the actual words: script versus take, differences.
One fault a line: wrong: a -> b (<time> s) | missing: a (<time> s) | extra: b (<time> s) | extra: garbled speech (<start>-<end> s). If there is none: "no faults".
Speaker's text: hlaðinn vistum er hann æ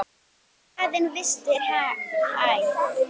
no faults